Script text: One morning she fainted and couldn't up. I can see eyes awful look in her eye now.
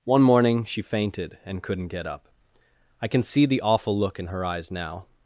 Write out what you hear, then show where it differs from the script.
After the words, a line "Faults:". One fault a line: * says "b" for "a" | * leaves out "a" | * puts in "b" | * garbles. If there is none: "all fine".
One morning she fainted and couldn't get up. I can see the awful look in her eyes now.
Faults:
* puts in "get"
* says "the" for "eyes"
* says "eyes" for "eye"